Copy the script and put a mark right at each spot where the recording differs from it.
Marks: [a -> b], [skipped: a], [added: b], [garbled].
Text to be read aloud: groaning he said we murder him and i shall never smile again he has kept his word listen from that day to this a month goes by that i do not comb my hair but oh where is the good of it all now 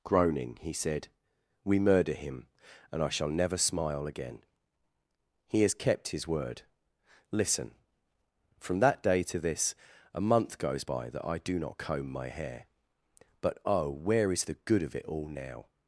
groaning he said we murder him and i shall never smile again he has kept his word listen from that day to this a month goes by that i do not comb my hair but oh where is the good of it all now